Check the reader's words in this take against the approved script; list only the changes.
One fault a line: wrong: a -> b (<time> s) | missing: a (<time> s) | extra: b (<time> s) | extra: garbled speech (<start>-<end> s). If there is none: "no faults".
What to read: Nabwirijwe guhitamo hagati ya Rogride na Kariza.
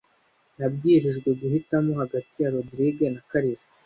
no faults